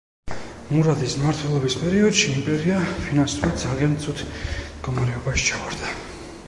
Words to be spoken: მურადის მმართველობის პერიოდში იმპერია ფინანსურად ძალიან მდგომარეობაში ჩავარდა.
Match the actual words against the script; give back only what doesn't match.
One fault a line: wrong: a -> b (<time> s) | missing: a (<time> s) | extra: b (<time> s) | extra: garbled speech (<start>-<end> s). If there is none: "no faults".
extra: ცუდ (4.1 s)